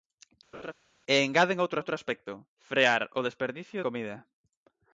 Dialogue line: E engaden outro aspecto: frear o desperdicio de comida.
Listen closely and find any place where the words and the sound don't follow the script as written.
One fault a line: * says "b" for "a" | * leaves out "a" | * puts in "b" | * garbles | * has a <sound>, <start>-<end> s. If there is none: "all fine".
* has a laugh, 0.5-0.7 s
* puts in "outro"
* leaves out "de"